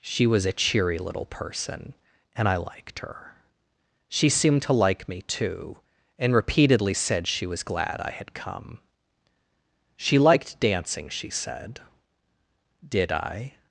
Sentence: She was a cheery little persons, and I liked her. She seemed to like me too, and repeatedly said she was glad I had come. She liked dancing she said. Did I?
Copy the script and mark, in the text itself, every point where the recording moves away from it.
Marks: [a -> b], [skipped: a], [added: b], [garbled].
She was a cheery little [persons, -> person] and I liked her. She seemed to like me too, and repeatedly said she was glad I had come. She liked dancing she said. Did I?